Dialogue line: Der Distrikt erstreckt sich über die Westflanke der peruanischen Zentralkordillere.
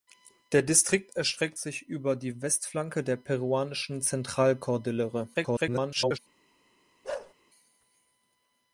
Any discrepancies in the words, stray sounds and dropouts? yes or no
yes